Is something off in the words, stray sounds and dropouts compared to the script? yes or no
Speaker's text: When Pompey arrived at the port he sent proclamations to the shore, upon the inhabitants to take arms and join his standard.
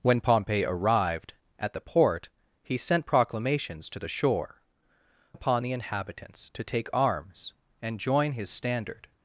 no